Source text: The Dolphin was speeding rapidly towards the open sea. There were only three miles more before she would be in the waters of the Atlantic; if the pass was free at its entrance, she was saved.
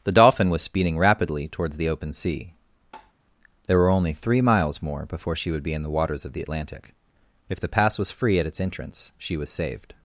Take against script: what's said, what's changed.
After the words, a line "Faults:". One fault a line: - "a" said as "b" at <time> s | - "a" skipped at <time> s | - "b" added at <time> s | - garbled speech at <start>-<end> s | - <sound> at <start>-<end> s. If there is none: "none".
The Dolphin was speeding rapidly towards the open sea. There were only three miles more before she would be in the waters of the Atlantic; if the pass was free at its entrance, she was saved.
Faults:
- tap at 2.9-3.1 s